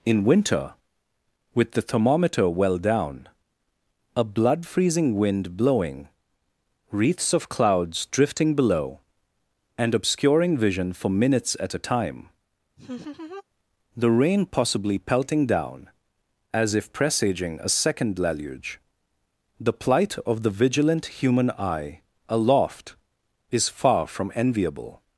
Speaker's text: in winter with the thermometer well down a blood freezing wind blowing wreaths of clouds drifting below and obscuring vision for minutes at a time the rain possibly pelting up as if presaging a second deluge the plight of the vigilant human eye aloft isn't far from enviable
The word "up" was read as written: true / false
false